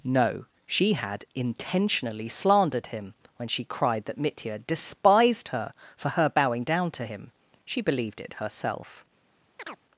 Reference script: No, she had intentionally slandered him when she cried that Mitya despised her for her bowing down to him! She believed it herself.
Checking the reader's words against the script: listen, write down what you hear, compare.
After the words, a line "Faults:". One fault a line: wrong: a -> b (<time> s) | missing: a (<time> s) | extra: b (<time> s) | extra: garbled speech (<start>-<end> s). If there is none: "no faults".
No, she had intentionally slandered him when she cried that Mitya despised her for her bowing down to him! She believed it herself.
Faults:
no faults